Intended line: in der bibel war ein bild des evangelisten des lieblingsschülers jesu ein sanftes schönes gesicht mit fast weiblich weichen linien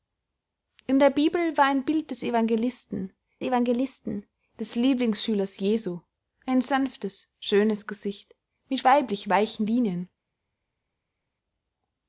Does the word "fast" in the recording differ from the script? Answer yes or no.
yes